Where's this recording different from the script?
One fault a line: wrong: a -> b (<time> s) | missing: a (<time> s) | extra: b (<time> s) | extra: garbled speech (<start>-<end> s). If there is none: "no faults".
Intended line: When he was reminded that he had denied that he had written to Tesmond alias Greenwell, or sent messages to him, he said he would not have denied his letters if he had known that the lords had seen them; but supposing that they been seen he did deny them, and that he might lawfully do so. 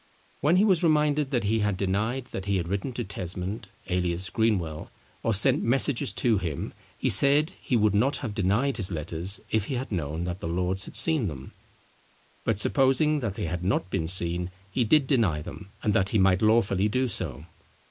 extra: had not (13.5 s)